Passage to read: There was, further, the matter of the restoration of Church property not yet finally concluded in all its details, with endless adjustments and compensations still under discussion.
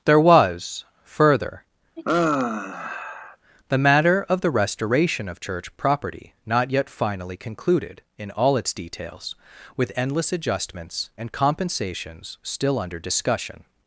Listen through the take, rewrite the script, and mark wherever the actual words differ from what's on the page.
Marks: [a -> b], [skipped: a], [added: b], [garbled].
There was, further, the matter of the restoration of Church property not yet finally concluded in all its details, with endless adjustments and compensations still under discussion.